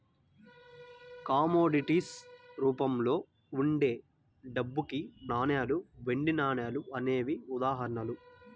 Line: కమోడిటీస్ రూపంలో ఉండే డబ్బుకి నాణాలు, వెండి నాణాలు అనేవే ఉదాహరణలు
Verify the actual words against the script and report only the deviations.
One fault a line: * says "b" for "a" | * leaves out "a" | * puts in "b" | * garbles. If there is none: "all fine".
all fine